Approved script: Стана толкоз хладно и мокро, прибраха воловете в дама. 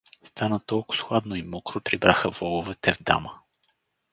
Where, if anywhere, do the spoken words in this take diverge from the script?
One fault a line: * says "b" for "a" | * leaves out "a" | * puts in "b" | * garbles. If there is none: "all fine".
all fine